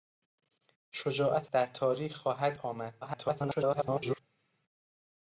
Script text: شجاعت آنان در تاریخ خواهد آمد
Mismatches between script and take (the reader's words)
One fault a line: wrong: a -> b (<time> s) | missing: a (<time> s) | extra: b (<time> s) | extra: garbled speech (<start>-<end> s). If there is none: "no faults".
missing: آنان (1.5 s)
extra: garbled speech (3.0-4.2 s)